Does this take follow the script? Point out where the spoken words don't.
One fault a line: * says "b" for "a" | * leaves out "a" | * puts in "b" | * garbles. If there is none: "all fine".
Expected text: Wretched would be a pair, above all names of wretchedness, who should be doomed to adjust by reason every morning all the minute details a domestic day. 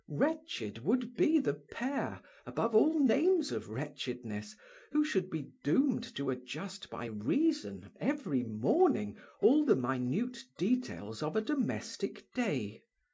* says "the" for "a"
* puts in "of"